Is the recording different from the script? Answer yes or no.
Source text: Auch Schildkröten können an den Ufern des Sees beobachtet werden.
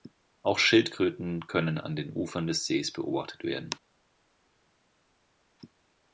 no